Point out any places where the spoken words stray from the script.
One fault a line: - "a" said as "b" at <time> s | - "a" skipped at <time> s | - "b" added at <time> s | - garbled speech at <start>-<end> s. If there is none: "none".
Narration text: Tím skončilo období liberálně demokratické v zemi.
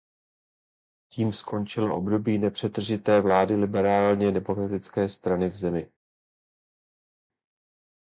- "nepřetržité vlády" added at 2.4 s
- "strany" added at 5.1 s